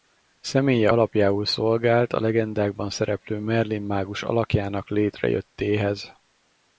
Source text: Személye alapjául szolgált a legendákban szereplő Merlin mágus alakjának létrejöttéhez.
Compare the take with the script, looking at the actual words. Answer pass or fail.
pass